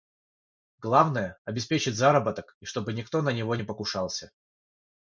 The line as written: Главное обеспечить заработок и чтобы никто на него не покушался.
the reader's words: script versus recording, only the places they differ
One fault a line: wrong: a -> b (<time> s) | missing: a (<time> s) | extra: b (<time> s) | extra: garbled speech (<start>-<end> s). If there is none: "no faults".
no faults